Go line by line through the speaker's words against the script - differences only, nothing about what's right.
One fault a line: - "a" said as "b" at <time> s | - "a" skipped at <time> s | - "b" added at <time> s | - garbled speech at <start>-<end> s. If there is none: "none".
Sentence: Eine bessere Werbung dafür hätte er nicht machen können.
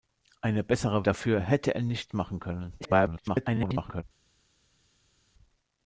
- "Werbung" skipped at 1.1 s
- garbled speech at 2.8-4.0 s